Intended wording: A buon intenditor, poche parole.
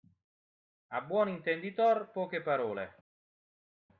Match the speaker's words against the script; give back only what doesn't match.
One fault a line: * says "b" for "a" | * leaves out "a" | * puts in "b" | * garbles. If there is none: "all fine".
all fine